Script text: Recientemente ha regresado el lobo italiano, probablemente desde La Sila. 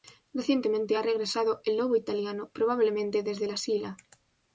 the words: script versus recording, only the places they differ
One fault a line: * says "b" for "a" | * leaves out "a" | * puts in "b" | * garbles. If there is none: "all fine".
all fine